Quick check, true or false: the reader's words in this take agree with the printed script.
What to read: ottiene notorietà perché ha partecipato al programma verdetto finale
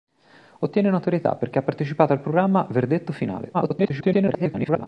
false